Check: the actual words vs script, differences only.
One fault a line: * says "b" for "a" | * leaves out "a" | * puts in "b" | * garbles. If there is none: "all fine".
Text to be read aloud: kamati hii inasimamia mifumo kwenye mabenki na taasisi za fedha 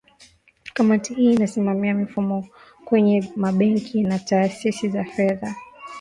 all fine